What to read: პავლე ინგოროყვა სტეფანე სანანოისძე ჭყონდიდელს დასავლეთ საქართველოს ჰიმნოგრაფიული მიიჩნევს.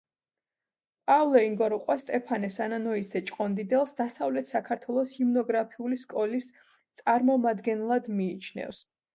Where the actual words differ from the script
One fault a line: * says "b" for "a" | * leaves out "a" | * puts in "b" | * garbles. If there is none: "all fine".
* puts in "სკოლის წარმომადგენლად"